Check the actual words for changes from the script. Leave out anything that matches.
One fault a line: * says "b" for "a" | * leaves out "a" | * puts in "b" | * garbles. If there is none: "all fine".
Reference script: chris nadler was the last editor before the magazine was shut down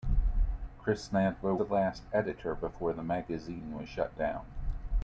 * leaves out "was"